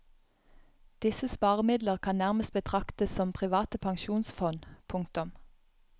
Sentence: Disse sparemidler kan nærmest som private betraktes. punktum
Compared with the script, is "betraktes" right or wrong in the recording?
wrong